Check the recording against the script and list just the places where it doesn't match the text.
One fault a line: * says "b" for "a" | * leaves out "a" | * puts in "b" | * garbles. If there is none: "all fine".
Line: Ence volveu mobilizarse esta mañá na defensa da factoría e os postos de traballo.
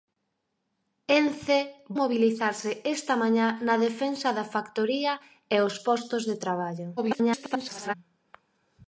* leaves out "volveu"
* garbles